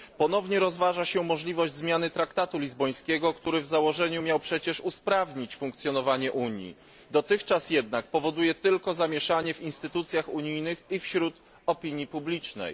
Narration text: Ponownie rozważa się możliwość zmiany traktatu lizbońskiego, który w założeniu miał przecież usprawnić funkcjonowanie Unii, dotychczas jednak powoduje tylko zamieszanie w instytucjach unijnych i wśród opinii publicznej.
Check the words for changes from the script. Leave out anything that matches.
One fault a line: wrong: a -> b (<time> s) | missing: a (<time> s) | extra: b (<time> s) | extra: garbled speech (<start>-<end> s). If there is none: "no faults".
no faults